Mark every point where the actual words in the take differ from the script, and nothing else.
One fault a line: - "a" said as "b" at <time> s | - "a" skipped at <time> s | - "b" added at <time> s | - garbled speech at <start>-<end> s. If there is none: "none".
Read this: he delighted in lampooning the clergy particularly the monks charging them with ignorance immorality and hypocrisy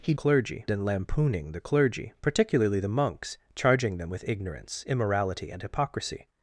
- "delighted" said as "clergy" at 0.1 s